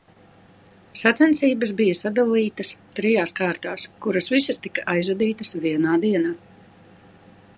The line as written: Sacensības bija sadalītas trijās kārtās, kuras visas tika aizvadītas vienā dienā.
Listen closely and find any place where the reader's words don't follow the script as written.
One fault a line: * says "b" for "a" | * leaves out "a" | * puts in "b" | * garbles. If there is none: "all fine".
all fine